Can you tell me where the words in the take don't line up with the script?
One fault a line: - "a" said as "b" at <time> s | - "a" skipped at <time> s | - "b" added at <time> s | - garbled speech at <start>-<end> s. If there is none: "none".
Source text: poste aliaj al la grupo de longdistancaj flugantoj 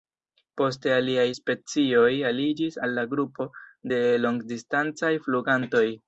- "specioj aliĝis" added at 1.4 s